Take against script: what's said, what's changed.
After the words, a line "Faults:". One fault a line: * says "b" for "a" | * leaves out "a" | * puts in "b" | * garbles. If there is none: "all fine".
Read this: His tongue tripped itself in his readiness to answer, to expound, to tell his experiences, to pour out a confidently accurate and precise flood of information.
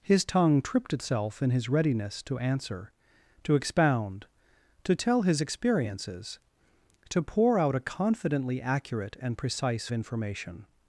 His tongue tripped itself in his readiness to answer, to expound, to tell his experiences, to pour out a confidently accurate and precise information.
Faults:
* leaves out "flood of"